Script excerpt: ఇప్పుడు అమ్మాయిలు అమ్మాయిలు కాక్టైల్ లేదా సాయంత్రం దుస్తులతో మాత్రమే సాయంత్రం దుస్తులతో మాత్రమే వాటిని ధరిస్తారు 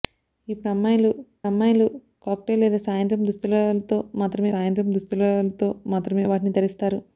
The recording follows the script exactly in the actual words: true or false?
true